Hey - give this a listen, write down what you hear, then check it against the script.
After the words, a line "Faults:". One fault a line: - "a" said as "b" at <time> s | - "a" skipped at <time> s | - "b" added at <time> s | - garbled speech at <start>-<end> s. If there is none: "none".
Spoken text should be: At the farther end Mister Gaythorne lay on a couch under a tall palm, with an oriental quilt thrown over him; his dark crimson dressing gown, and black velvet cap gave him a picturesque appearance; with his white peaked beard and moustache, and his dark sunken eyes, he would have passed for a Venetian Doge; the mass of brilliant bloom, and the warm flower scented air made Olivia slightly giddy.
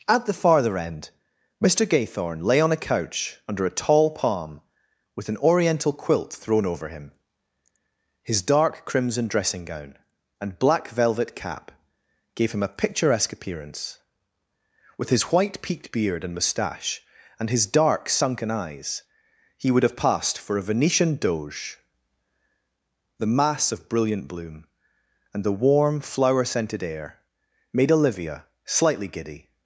At the farther end Mister Gaythorne lay on a couch under a tall palm, with an oriental quilt thrown over him; his dark crimson dressing gown, and black velvet cap gave him a picturesque appearance; with his white peaked beard and moustache, and his dark sunken eyes, he would have passed for a Venetian Doge; the mass of brilliant bloom, and the warm flower scented air made Olivia slightly giddy.
Faults:
none